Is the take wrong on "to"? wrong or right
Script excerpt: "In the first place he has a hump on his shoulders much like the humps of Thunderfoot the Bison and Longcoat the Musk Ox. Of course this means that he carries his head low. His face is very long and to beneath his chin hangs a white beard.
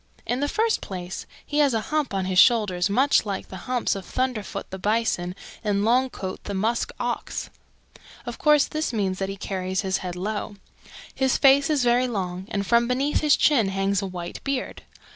wrong